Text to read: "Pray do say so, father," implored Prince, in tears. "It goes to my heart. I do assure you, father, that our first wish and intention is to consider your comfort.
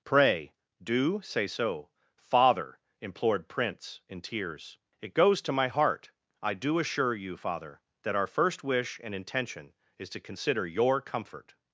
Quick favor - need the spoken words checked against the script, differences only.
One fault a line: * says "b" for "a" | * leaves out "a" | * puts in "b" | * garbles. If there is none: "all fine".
all fine